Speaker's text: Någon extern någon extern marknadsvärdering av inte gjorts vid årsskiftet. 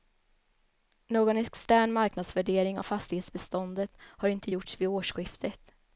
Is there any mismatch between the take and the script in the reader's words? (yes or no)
yes